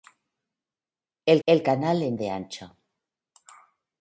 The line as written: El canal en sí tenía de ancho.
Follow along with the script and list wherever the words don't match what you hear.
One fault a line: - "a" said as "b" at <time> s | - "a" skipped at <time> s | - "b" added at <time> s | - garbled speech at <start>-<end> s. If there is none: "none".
- "el" added at 1.5 s
- "sí tenía" skipped at 2.2 s